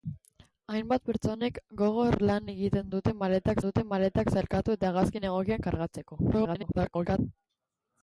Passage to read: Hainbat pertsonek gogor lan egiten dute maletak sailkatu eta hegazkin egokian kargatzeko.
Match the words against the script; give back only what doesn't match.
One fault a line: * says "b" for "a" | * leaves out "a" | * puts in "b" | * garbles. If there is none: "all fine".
* puts in "dute maletak"
* garbles